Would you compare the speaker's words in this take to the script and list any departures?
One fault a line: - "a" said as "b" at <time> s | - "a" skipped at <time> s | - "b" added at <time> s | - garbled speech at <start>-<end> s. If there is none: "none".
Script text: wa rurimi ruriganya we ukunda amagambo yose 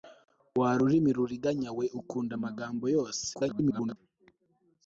- garbled speech at 3.3-4.0 s